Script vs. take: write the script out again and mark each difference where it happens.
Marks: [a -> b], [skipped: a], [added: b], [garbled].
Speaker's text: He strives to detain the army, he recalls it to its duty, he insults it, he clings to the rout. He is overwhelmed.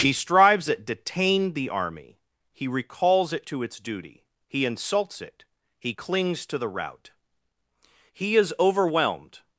He strives [to -> at] detain the army, he recalls it to its duty, he insults it, he clings to the rout. He is overwhelmed.